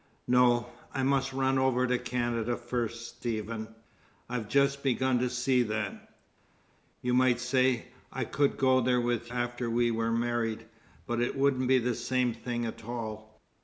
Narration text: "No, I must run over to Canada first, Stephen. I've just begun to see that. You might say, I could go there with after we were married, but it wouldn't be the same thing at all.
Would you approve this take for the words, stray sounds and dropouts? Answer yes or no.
yes